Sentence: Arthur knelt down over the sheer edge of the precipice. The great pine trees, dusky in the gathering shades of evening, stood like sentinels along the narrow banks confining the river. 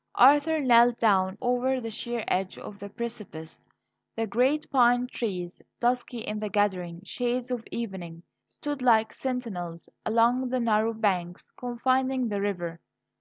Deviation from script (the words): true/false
false